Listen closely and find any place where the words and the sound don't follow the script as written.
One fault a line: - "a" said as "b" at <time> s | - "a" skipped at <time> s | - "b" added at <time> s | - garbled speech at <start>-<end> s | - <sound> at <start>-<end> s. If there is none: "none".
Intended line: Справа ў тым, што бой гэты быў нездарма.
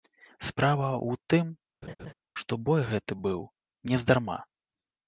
- laugh at 1.8-2.1 s